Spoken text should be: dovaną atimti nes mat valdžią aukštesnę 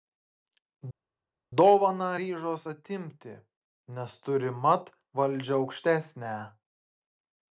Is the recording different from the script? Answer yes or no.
yes